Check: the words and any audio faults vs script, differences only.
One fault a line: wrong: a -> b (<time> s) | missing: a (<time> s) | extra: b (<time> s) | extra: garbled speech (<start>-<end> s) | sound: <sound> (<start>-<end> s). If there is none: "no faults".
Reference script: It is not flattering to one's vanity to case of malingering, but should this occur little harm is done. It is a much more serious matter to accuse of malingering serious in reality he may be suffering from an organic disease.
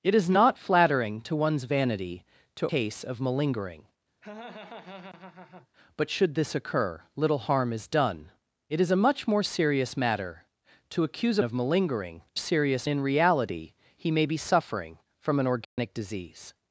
sound: laugh (4.2-5.7 s)
sound: dropout (15.6-15.8 s)